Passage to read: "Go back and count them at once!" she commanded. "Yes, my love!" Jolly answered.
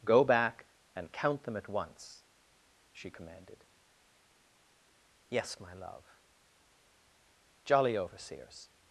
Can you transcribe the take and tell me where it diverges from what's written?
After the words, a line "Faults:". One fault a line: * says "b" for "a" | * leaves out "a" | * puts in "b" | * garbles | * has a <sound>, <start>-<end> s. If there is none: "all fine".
"Go back and count them at once!" she commanded. "Yes, my love!" Jolly overseers.
Faults:
* says "overseers" for "answered"